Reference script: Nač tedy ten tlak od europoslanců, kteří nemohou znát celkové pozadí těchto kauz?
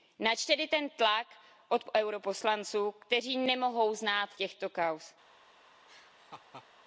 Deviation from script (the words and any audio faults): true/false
true